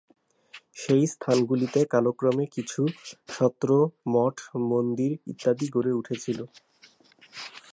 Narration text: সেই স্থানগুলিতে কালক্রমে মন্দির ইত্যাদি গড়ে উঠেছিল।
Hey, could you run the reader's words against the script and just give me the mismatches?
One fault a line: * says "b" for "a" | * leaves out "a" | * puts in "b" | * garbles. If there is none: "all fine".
* puts in "কিছু সত্র মঠ"